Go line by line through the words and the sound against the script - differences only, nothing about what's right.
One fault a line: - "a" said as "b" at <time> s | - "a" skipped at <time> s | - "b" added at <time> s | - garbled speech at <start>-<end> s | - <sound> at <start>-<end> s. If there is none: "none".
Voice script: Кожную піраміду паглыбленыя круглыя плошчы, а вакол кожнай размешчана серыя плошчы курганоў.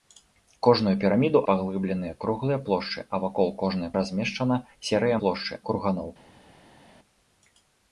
none